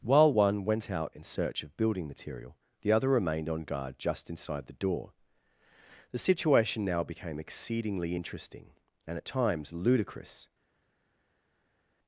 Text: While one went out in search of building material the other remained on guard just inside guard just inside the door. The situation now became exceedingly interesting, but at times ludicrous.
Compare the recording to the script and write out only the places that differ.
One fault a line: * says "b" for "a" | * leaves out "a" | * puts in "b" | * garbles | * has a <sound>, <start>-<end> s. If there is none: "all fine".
* leaves out "guard just inside"
* says "and" for "but"